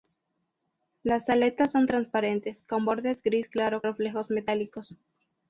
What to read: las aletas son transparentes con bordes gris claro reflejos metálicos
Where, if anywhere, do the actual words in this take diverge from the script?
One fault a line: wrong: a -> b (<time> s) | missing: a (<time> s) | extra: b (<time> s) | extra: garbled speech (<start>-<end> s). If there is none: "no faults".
no faults